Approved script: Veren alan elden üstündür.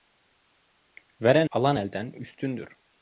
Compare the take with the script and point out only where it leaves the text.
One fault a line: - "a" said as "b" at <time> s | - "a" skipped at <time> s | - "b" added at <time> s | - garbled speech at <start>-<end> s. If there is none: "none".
none